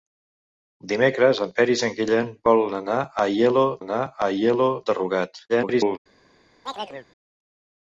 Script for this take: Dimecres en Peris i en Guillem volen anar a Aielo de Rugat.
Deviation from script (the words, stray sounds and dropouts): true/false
true